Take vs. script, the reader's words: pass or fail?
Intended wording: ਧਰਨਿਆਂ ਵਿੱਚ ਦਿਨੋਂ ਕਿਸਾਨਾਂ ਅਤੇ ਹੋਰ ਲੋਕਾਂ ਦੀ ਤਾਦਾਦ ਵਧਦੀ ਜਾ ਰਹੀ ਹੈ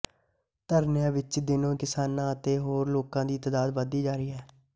pass